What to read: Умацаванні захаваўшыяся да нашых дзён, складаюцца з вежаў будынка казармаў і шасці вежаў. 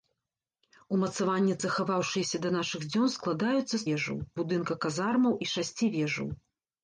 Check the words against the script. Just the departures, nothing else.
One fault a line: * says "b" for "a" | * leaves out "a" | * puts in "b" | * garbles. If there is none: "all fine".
all fine